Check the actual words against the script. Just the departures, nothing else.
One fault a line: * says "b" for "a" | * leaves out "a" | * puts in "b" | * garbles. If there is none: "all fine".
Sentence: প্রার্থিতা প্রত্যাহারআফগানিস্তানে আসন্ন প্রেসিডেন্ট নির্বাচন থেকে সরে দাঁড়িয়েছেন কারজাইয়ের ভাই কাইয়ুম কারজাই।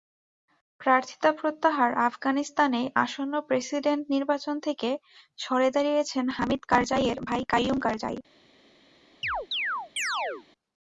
* puts in "হামিদ"